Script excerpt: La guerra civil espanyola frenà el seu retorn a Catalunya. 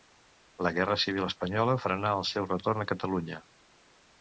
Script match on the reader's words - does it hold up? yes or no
yes